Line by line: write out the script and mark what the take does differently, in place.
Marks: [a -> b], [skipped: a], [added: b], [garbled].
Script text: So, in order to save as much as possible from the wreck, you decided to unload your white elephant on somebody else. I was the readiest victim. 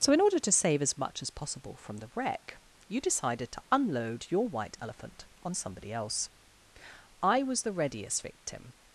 So, in order to save as much as possible from the wreck, you decided to unload your white elephant on somebody else. I was the readiest victim.